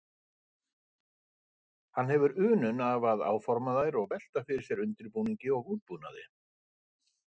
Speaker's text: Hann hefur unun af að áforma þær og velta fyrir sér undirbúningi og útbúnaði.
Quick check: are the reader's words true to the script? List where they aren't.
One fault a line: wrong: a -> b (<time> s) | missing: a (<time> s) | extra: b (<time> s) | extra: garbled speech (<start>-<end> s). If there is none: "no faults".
no faults